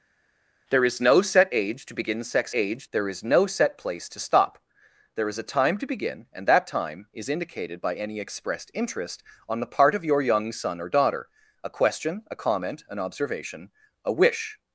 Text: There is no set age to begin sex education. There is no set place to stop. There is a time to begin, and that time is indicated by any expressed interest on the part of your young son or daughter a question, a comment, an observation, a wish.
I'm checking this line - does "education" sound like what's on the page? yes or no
no